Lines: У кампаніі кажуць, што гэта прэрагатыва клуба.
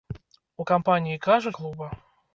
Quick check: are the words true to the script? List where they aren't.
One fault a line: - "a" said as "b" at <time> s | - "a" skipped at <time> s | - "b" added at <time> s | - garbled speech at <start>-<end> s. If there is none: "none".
- "што гэта прэрагатыва" skipped at 1.5 s